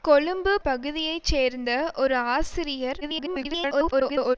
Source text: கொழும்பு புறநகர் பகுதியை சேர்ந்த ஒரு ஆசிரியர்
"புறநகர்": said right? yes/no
no